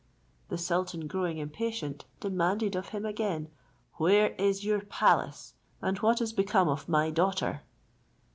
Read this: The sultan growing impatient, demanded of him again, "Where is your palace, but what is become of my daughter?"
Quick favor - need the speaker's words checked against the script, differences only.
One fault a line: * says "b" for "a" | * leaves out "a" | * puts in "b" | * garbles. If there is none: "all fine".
* says "and" for "but"